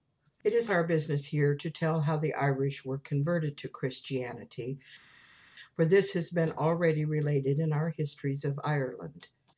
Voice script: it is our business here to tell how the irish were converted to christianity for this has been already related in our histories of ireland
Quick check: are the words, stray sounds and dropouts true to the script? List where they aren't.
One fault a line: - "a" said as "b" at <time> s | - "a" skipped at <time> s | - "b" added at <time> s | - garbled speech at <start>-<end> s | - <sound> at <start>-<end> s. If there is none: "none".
none